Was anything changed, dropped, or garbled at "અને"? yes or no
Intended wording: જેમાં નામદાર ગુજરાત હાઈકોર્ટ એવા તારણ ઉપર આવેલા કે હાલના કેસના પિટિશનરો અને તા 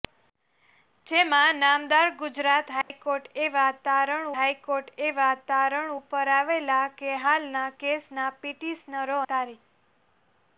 yes